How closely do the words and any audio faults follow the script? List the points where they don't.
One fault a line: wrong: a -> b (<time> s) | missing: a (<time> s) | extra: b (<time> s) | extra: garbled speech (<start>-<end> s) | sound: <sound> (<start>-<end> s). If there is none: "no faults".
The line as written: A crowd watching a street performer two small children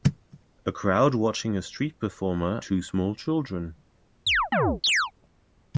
sound: chirp (4.3-5.1 s)